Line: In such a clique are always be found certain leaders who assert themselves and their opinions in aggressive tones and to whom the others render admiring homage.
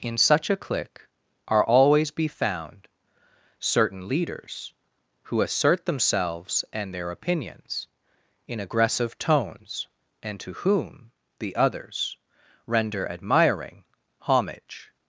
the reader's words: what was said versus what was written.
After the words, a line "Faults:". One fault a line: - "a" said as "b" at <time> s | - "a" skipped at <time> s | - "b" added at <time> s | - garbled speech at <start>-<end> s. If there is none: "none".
In such a clique are always be found certain leaders who assert themselves and their opinions in aggressive tones and to whom the others render admiring homage.
Faults:
none